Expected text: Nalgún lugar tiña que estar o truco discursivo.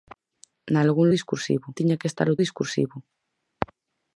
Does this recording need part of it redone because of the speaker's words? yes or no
yes